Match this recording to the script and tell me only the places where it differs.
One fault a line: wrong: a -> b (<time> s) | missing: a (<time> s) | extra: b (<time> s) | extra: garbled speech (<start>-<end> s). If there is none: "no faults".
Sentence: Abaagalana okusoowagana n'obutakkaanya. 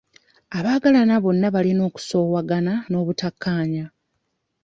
extra: bonna balina (1.2 s)